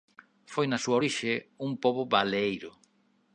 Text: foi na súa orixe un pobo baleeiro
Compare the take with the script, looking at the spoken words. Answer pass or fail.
pass